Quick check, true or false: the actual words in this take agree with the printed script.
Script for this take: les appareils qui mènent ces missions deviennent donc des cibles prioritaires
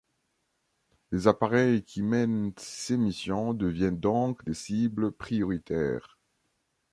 true